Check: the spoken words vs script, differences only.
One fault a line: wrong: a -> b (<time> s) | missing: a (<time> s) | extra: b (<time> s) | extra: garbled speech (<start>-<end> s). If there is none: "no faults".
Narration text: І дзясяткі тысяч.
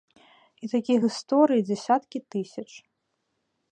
extra: такіх гісторый (0.7 s)